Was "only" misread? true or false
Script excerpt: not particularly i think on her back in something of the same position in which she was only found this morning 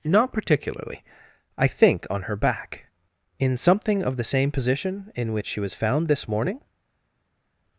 true